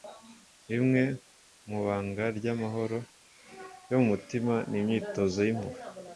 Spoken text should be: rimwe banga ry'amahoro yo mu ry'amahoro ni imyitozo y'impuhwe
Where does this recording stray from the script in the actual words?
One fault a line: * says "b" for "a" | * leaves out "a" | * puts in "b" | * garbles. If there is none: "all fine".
* puts in "mu"
* says "mutima" for "ry'amahoro"